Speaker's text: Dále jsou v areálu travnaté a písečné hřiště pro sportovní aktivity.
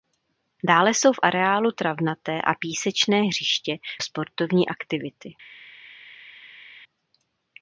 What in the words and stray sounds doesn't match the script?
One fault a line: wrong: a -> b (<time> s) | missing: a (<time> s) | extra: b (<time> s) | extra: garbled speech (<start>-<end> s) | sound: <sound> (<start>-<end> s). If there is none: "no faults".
missing: pro (3.8 s)